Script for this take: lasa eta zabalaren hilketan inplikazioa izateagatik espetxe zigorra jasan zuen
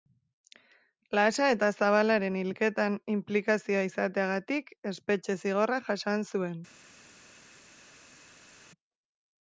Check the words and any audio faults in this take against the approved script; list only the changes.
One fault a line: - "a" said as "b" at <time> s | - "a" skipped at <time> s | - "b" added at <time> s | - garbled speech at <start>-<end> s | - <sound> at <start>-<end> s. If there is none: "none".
none